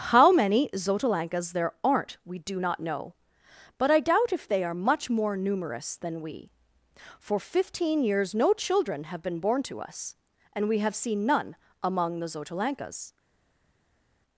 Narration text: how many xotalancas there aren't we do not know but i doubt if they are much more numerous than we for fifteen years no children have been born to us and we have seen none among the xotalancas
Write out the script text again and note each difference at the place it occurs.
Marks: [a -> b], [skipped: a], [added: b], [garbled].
how many xotalancas there aren't we do not know but i doubt if they are much more numerous than we for fifteen years no children have been born to us and we have seen none among the xotalancas